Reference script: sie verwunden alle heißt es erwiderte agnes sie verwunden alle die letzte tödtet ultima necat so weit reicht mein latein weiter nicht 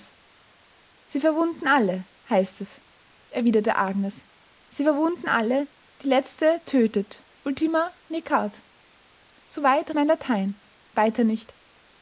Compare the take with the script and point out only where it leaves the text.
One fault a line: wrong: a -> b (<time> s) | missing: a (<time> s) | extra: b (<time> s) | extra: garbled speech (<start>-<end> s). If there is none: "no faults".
missing: reicht (9.9 s)